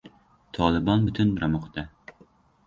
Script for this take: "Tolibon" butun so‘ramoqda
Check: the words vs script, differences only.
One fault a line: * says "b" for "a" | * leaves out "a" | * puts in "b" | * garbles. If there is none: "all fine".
all fine